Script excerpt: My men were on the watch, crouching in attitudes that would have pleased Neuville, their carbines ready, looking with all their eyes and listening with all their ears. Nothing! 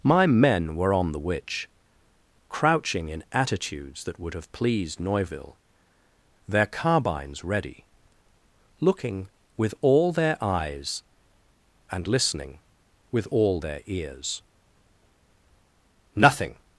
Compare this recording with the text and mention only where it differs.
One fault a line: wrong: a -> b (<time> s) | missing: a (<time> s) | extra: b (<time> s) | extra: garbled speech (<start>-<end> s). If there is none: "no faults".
wrong: watch -> witch (1.2 s)